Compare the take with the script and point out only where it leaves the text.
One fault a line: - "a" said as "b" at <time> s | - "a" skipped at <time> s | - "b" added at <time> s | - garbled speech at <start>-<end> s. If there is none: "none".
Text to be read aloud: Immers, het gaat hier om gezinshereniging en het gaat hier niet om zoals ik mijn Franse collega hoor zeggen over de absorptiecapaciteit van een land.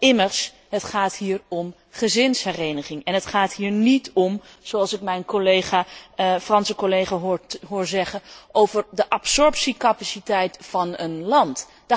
none